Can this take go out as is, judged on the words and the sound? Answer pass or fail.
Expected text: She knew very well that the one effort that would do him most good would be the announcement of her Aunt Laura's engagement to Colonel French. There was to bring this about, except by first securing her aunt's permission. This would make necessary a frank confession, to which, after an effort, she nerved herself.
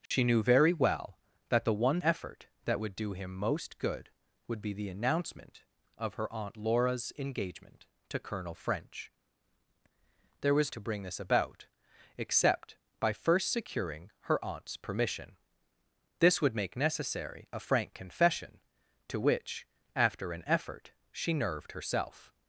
fail